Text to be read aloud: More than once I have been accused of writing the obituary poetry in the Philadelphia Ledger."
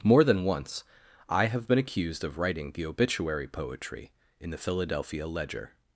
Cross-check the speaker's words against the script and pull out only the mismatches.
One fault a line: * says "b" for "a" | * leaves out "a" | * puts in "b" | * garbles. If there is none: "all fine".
all fine